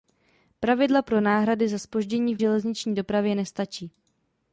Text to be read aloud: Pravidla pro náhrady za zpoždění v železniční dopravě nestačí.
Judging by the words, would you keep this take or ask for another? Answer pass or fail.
pass